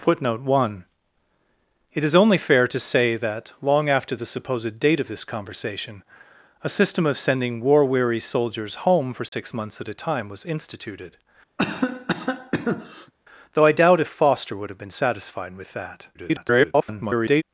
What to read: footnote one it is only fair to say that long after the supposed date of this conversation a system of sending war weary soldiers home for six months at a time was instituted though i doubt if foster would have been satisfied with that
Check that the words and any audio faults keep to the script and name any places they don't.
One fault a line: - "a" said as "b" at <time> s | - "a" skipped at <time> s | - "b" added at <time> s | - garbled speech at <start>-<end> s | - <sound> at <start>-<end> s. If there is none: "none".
- dropout at 9.3-9.3 s
- cough at 11.6-13.1 s
- garbled speech at 16.1-17.4 s